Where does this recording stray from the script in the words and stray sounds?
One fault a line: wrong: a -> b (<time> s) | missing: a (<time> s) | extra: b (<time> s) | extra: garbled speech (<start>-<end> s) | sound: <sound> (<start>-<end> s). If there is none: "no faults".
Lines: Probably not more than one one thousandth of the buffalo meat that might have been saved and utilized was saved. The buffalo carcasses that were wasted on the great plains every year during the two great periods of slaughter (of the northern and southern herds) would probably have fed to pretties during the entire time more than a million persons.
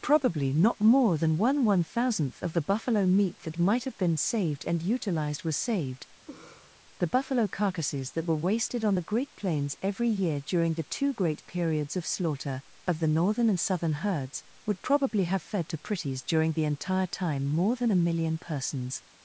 sound: laugh (6.3-6.8 s)